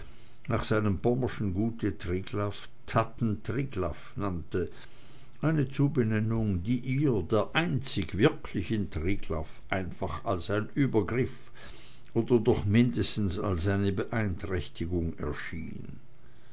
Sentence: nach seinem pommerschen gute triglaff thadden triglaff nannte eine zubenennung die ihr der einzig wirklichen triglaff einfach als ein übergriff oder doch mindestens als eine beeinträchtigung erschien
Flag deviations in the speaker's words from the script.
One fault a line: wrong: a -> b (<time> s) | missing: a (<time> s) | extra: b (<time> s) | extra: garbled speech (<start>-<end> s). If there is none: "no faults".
no faults